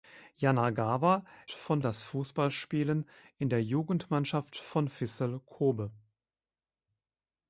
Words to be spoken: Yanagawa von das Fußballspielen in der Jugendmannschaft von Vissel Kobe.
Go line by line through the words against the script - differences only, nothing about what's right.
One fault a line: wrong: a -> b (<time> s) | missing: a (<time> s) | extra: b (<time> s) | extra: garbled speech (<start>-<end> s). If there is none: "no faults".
no faults